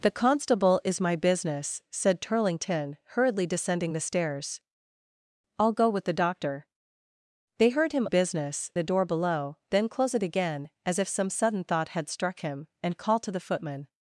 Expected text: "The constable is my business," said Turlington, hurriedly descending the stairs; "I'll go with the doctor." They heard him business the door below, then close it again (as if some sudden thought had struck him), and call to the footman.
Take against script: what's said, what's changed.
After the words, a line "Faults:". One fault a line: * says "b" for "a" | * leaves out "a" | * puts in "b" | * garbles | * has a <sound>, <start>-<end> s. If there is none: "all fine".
"The constable is my business," said Turlington, hurriedly descending the stairs; "I'll go with the doctor." They heard him business the door below, then close it again (as if some sudden thought had struck him), and call to the footman.
Faults:
all fine